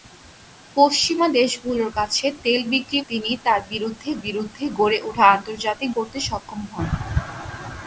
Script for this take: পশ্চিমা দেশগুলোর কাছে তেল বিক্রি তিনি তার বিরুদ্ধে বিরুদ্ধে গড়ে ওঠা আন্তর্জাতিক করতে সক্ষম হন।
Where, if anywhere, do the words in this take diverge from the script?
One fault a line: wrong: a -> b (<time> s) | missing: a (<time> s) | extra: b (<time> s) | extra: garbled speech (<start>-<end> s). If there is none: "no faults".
no faults